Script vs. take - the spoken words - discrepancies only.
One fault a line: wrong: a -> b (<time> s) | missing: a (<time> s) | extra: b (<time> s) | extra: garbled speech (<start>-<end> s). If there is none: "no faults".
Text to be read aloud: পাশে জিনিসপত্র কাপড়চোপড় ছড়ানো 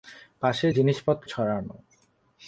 missing: কাপড়চোপড় (1.3 s)